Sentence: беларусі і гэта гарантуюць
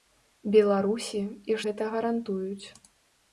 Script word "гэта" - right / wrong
right